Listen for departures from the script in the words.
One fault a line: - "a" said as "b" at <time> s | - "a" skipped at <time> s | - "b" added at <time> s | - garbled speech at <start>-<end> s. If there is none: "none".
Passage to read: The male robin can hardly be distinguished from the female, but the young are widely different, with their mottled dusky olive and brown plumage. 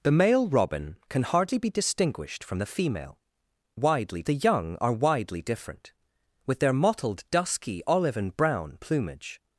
- "but" said as "widely" at 3.7 s